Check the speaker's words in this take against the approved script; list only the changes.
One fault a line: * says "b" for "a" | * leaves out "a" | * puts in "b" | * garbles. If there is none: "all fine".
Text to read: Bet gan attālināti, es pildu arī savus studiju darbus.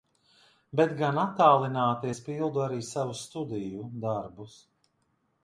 all fine